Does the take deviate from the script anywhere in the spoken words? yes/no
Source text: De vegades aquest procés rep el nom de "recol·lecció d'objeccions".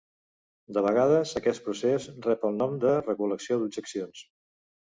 no